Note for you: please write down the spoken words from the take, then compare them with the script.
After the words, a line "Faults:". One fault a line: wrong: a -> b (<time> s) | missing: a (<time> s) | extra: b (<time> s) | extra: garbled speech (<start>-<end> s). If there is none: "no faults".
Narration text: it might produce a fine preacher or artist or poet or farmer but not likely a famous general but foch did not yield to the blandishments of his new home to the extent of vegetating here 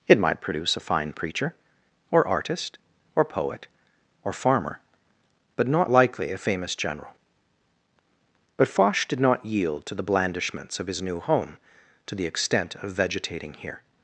it might produce a fine preacher or artist or poet or farmer but not likely a famous general but foch did not yield to the blandishments of his new home to the extent of vegetating here
Faults:
no faults